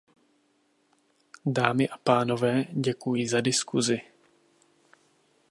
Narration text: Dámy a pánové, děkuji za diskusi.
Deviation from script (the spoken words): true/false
false